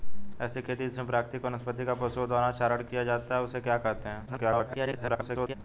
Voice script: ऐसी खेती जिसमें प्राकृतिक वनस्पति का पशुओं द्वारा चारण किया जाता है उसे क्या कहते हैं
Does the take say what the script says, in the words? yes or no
no